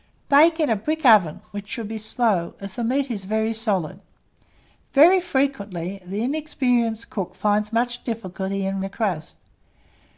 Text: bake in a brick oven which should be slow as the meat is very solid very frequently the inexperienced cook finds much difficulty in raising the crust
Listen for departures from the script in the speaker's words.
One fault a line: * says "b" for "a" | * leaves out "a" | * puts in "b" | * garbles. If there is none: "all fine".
* leaves out "raising"